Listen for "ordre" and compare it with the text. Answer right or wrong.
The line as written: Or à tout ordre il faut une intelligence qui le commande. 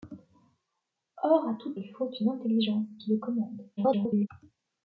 wrong